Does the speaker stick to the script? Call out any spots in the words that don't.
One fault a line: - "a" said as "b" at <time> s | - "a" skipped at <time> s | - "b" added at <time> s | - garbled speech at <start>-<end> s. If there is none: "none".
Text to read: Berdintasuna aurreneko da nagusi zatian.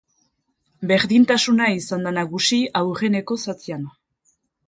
- "aurreneko" said as "izan" at 1.8 s
- "aurreneko" added at 2.8 s